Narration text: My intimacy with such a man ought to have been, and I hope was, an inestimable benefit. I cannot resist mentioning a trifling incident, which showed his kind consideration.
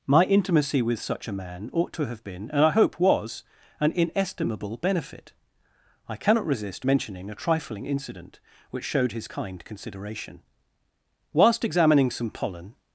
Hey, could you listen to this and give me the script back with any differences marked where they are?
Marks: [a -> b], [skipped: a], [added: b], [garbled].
My intimacy with such a man ought to have been, and I hope was, an inestimable benefit. I cannot resist mentioning a trifling incident, which showed his kind consideration. [added: Whilst examining some pollen]